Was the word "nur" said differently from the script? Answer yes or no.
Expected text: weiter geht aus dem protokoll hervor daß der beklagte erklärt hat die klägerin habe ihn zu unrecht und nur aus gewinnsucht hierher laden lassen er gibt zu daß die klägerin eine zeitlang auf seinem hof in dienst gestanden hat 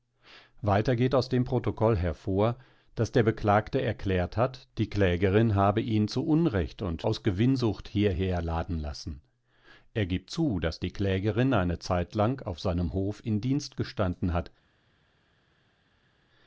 yes